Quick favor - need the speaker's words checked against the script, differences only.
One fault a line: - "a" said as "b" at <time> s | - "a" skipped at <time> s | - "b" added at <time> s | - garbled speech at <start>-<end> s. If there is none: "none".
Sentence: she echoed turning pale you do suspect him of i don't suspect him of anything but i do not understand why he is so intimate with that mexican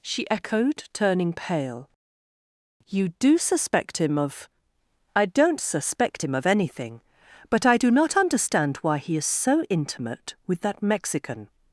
none